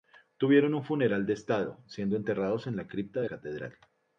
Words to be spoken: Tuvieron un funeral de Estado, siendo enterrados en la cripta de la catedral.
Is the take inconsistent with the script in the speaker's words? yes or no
yes